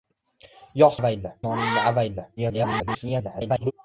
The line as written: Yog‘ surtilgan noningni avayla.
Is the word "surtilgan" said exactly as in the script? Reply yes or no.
no